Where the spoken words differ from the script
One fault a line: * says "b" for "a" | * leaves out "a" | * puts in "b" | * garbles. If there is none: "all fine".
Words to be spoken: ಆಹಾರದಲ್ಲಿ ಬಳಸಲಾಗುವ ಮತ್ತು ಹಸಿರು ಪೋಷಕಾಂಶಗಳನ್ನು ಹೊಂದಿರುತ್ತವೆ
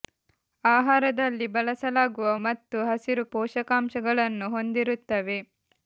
all fine